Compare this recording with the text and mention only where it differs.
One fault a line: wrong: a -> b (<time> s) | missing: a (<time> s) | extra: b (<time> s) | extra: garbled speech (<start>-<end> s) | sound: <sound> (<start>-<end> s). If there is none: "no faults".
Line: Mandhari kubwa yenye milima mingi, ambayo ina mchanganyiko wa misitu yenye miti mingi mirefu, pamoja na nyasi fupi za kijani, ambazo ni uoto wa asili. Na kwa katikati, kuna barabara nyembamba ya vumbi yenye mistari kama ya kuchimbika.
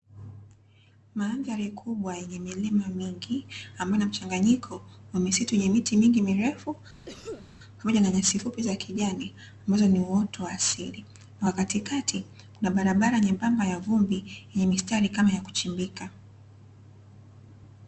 sound: cough (7.1-7.5 s)